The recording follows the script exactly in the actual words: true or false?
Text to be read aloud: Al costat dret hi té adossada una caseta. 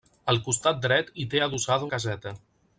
false